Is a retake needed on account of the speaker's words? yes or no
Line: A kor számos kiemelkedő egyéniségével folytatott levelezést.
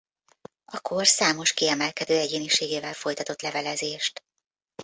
no